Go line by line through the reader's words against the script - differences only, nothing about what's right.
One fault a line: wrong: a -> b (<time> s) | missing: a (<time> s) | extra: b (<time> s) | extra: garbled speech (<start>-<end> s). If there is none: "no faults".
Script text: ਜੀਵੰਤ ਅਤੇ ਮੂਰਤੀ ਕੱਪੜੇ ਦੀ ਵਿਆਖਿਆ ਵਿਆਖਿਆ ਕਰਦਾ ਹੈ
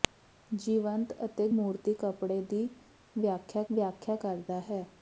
no faults